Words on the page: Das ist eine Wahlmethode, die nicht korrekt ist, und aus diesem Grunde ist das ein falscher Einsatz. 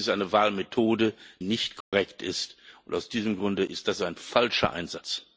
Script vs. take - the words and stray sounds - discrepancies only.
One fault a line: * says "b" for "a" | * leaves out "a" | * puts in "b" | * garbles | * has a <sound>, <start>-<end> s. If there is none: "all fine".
* leaves out "die"
* has a dropout, 1.8-1.9 s